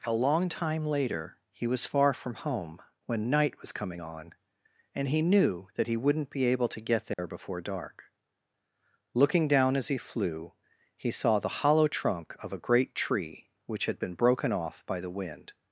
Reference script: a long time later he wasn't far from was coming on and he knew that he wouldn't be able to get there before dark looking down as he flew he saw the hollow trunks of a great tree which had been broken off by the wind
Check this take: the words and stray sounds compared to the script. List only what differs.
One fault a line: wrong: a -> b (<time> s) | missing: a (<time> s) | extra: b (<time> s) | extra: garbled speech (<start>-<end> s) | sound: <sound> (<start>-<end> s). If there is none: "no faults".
wrong: wasn't -> was (1.7 s)
extra: home when night (2.4 s)
sound: dropout (7.1-7.2 s)
wrong: trunks -> trunk (11.9 s)